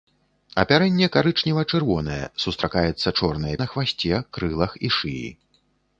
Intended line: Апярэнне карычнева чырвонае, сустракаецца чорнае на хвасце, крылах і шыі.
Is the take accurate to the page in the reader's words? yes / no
yes